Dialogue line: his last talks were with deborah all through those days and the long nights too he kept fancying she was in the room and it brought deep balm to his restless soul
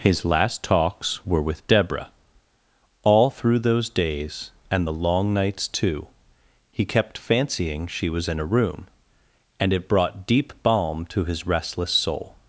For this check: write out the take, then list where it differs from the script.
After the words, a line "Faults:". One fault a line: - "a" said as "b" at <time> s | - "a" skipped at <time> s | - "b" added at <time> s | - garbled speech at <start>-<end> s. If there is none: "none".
his last talks were with deborah all through those days and the long nights too he kept fancying she was in a room and it brought deep balm to his restless soul
Faults:
- "the" said as "a" at 8.4 s